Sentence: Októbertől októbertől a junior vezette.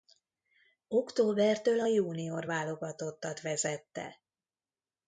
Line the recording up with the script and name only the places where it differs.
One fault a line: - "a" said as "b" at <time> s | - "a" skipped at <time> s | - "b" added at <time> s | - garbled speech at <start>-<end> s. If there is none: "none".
- "októbertől" skipped at 1.8 s
- "válogatottat" added at 2.4 s